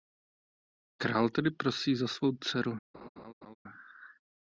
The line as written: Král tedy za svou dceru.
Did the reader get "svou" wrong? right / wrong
right